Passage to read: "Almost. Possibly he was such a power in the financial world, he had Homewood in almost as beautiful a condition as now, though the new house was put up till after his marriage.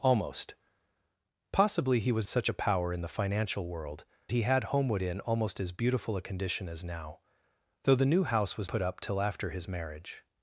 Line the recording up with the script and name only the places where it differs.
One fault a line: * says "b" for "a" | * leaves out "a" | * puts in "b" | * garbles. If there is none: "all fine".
all fine